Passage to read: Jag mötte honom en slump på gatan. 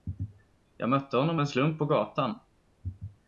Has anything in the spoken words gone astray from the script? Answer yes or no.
no